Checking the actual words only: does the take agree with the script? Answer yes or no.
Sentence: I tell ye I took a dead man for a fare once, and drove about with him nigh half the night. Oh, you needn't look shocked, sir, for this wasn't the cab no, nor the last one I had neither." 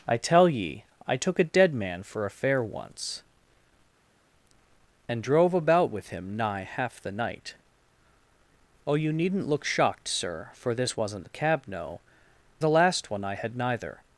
no